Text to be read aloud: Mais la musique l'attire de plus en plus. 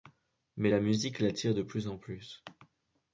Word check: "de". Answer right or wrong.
right